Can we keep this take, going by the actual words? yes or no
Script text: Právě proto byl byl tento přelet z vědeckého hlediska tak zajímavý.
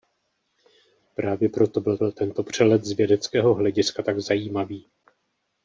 yes